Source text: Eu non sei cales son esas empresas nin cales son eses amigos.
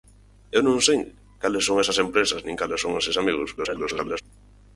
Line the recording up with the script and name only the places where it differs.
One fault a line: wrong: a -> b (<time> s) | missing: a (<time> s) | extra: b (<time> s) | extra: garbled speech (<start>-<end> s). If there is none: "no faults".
extra: garbled speech (3.6-4.2 s)